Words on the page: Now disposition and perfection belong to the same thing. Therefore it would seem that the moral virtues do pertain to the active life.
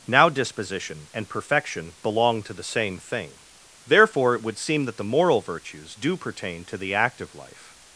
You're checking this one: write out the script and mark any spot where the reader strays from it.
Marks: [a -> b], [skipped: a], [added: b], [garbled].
Now disposition and perfection belong to the same thing. Therefore it would seem that the moral virtues do pertain to the active life.